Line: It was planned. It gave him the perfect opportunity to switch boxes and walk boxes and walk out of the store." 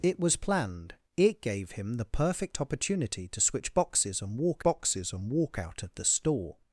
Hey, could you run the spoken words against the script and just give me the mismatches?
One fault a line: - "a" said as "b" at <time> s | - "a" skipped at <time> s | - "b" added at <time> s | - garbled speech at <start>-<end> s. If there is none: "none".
none